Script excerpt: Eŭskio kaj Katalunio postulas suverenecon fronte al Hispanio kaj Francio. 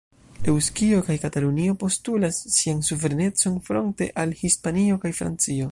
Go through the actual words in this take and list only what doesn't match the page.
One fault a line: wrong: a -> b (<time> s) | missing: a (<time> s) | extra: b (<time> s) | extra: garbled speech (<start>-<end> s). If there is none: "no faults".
extra: sian (2.5 s)